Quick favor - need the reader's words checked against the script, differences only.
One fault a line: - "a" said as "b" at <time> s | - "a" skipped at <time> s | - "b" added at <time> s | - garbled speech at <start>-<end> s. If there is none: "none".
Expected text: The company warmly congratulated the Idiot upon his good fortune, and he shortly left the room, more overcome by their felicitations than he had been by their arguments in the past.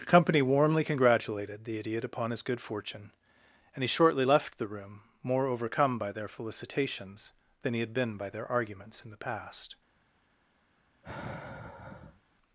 none